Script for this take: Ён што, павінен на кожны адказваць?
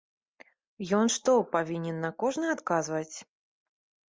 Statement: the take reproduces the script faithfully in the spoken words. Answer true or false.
true